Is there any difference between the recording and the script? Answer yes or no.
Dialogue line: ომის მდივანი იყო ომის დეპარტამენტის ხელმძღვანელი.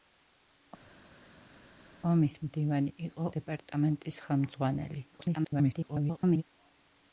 yes